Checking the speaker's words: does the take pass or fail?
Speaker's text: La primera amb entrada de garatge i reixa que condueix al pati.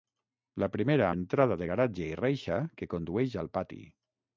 fail